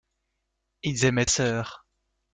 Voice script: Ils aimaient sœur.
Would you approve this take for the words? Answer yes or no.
yes